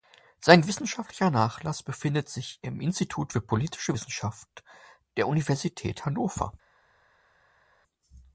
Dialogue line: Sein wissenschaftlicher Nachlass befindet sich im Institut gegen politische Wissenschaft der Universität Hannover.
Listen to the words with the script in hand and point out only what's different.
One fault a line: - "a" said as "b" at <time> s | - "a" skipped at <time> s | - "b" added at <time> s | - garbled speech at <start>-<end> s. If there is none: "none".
- "gegen" said as "für" at 3.3 s